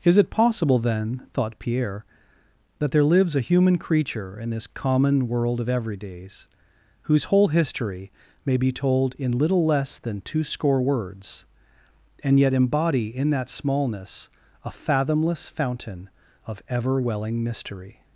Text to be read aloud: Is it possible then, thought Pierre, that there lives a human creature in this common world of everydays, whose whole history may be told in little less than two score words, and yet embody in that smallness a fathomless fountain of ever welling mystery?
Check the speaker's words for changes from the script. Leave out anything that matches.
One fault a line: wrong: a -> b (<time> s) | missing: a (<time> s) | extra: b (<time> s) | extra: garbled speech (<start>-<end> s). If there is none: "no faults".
no faults